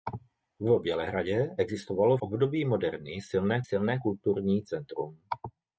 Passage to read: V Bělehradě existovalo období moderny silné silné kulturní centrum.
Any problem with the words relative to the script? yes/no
no